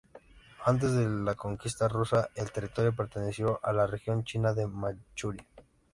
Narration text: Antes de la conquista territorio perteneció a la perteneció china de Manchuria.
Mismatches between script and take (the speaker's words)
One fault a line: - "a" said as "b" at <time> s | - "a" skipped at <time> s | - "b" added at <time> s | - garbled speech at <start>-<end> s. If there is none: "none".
- "rusa el" added at 1.9 s
- "perteneció" said as "región" at 3.9 s